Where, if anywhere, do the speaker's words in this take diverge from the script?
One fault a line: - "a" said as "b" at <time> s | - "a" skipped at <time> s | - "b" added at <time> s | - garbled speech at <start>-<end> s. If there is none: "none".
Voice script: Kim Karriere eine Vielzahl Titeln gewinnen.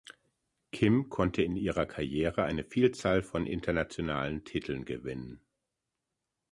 - "konnte in ihrer" added at 1.1 s
- "von internationalen" added at 3.2 s